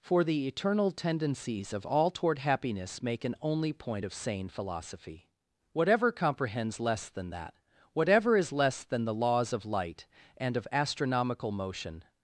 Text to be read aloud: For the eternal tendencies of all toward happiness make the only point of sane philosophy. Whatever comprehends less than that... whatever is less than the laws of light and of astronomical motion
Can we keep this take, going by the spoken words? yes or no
no